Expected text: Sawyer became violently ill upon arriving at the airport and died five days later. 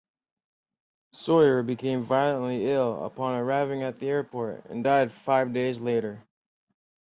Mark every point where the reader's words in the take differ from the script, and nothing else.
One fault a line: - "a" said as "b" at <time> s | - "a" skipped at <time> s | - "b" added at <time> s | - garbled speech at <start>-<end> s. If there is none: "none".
none